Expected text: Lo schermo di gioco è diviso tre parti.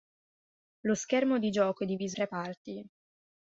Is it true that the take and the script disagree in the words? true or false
false